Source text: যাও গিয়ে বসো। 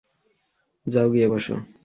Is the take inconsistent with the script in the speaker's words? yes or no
no